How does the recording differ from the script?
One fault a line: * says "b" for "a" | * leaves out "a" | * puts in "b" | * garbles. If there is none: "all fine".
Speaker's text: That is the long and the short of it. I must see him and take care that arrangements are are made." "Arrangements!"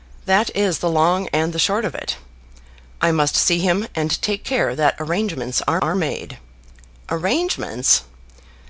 all fine